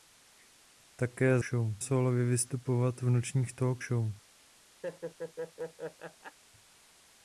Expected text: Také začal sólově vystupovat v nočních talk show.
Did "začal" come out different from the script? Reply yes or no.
yes